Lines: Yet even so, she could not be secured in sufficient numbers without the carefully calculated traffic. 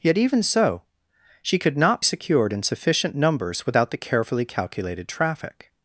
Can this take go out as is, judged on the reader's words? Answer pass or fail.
fail